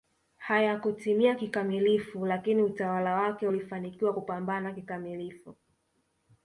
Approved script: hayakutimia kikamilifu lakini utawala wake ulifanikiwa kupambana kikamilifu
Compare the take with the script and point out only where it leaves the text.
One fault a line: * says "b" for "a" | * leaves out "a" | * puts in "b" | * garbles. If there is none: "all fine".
all fine